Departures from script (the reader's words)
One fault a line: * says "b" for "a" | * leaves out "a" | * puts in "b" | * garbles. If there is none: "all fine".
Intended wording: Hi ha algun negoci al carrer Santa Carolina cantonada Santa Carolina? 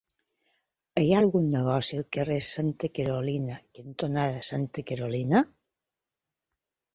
all fine